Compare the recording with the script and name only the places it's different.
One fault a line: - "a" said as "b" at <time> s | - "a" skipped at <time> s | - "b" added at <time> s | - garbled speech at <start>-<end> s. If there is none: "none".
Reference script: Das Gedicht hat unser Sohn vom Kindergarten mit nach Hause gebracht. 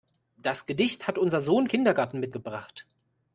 - "vom" skipped at 1.7 s
- "nach Hause" skipped at 2.3 s